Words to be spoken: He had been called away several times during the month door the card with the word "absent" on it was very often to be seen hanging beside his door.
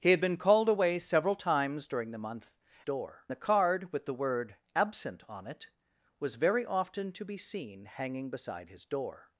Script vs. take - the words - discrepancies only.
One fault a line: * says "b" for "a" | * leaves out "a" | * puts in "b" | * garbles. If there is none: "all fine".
all fine